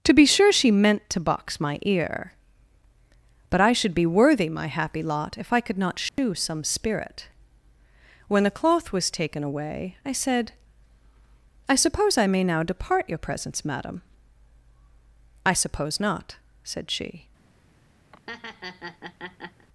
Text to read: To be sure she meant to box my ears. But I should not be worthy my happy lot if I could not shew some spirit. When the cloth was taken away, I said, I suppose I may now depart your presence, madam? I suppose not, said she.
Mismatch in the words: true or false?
true